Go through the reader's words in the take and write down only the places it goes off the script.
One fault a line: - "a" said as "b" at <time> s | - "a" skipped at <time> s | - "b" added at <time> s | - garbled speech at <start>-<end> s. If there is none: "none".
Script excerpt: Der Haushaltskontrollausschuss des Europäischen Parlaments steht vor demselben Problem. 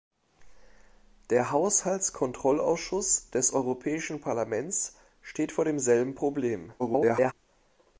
- garbled speech at 6.8-7.3 s